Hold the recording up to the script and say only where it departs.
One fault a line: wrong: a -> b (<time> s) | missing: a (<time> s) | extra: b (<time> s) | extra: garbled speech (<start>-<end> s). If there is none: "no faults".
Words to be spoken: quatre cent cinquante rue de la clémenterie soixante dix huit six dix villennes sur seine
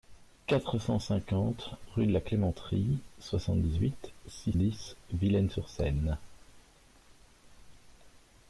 no faults